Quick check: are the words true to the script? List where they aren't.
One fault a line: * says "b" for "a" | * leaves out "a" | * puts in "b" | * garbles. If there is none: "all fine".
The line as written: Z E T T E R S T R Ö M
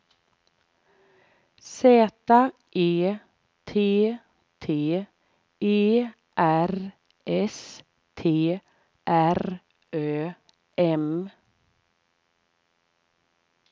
all fine